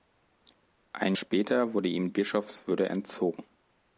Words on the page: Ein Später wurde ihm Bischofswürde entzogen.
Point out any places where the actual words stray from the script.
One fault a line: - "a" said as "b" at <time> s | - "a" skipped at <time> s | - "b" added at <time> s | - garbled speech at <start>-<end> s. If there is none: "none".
none